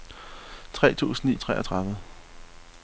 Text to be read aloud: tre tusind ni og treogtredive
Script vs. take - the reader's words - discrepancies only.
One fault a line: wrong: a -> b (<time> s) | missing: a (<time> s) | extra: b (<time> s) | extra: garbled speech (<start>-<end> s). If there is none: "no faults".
no faults